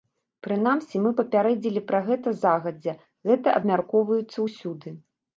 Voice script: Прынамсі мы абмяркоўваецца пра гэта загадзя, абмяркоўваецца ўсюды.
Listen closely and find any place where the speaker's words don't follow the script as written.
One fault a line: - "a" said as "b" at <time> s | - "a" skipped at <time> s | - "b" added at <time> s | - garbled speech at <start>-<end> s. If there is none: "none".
- "абмяркоўваецца" said as "папярэдзілі" at 1.2 s
- "гэта" added at 3.3 s